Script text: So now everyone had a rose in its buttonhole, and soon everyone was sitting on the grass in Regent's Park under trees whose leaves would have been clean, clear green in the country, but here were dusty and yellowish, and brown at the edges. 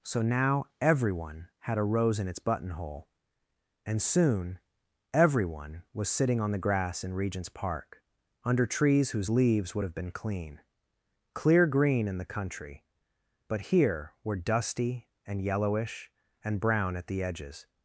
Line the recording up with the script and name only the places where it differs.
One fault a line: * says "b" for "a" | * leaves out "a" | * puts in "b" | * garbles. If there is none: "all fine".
all fine